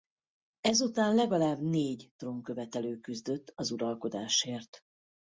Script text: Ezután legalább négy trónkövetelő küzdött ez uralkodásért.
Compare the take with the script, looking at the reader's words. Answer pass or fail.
fail